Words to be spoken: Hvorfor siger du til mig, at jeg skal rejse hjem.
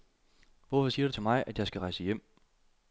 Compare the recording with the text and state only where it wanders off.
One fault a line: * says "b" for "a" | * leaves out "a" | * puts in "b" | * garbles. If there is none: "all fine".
all fine